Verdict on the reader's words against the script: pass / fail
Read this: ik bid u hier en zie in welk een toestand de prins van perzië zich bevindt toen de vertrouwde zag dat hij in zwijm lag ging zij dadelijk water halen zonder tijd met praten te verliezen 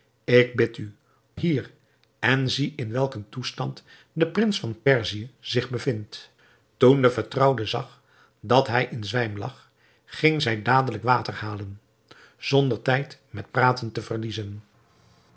pass